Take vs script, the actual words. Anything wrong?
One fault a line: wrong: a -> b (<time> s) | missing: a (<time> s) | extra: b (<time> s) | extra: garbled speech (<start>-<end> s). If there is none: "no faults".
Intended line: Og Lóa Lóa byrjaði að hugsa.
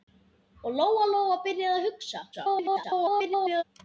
extra: garbled speech (2.3-3.6 s)